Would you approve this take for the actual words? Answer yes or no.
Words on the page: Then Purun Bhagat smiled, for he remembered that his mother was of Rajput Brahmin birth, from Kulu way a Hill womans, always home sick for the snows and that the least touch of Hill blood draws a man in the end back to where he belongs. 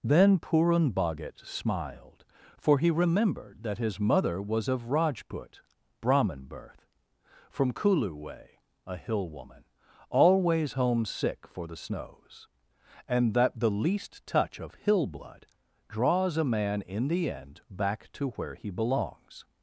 no